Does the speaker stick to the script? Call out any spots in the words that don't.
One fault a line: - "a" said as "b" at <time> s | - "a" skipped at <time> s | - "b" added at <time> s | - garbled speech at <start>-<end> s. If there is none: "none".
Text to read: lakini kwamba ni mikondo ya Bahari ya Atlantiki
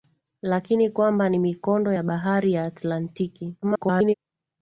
- garbled speech at 3.6-4.1 s